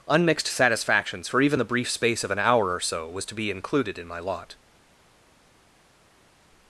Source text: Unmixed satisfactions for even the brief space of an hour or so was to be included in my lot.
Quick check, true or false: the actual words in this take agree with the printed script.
true